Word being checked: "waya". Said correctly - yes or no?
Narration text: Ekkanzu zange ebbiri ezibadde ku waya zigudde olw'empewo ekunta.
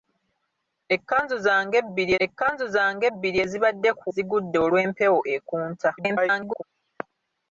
no